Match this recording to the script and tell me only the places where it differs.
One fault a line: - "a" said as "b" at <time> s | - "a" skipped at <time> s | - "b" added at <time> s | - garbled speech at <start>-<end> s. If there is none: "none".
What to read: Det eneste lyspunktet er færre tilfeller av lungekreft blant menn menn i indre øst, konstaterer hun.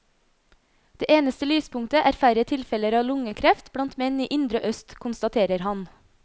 - "menn" skipped at 4.2 s
- "hun" said as "han" at 5.7 s